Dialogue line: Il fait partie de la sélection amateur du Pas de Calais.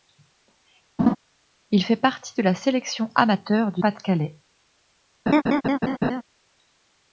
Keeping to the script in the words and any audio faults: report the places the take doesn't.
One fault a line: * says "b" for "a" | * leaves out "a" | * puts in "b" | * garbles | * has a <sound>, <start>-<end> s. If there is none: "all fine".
* has a laugh, 1.0-1.2 s
* has a laugh, 5.3-6.2 s